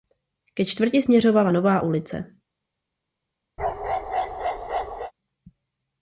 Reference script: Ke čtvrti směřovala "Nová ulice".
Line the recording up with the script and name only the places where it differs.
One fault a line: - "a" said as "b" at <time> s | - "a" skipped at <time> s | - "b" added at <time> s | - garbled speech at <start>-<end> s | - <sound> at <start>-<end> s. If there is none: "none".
- bark at 3.6-5.1 s